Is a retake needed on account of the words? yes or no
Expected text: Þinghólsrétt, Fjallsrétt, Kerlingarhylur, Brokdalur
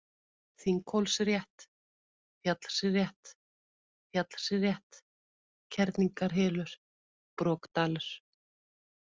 yes